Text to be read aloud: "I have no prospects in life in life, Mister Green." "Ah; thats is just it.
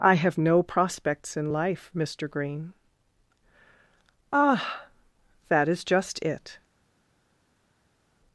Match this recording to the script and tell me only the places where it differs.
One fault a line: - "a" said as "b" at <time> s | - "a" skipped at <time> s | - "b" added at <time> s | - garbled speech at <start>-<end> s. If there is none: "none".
- "in life" skipped at 1.9 s
- "thats" said as "that" at 5.5 s